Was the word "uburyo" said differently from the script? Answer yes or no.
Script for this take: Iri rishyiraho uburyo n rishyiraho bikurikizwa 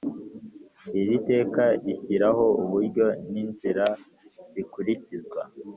no